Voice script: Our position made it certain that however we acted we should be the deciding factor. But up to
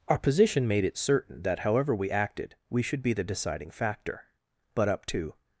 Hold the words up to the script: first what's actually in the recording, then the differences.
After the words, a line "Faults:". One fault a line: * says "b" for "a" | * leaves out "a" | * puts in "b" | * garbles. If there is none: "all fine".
Our position made it certain that however we acted we should be the deciding factor. But up to
Faults:
all fine